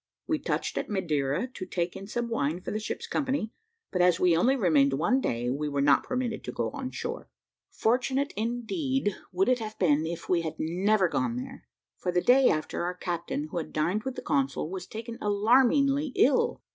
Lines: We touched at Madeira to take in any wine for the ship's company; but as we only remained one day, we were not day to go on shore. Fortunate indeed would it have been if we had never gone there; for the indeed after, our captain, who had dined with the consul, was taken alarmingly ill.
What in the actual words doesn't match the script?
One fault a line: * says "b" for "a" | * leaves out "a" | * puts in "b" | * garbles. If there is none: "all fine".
* says "some" for "any"
* says "permitted" for "day"
* says "day" for "indeed"